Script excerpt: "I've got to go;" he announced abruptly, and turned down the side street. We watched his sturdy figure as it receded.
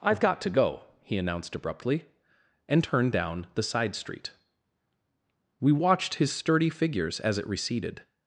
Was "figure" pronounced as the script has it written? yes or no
no